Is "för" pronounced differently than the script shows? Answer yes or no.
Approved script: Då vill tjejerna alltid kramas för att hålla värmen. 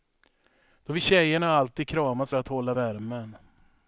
yes